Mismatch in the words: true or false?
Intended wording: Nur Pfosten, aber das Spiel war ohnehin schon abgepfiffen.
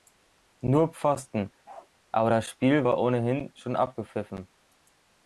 false